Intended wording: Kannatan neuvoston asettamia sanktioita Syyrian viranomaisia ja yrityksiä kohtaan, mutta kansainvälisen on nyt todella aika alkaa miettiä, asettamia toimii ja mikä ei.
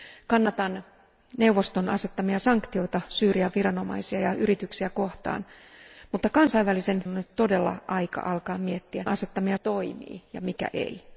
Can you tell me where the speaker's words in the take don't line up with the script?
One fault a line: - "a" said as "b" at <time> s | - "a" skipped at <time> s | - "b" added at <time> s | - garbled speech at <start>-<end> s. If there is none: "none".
none